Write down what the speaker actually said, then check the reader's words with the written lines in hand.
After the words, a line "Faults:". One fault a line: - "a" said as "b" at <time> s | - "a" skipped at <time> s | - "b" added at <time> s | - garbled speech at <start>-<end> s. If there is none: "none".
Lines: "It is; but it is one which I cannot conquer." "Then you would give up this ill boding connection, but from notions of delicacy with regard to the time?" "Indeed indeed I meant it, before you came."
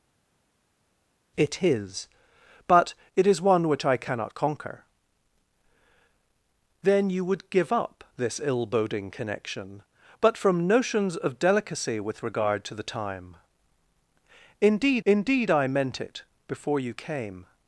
"It is; but it is one which I cannot conquer." "Then you would give up this ill boding connection, but from notions of delicacy with regard to the time?" "Indeed indeed I meant it, before you came."
Faults:
none